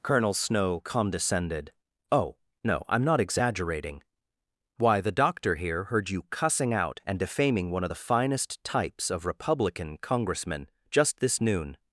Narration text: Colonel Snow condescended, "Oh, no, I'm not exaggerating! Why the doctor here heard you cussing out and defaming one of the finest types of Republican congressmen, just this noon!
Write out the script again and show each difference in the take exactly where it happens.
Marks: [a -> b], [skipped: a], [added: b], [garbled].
Colonel Snow condescended, "Oh, no, I'm not exaggerating! Why the doctor here heard you cussing out and defaming one of the finest types of Republican congressmen, just this noon!